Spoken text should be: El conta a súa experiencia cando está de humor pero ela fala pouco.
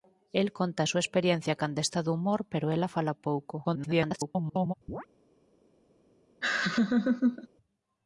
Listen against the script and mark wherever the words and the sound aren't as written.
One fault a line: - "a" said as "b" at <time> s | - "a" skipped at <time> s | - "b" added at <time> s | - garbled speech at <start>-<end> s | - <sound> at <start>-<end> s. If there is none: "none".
- garbled speech at 3.6-4.7 s
- chirp at 4.9-5.1 s
- laugh at 6.4-7.5 s